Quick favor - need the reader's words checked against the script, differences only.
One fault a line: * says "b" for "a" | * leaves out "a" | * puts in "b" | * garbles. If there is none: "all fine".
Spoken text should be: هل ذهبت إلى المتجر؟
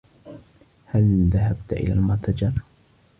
all fine